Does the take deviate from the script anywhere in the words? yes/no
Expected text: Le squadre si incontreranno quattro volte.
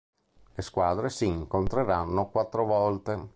no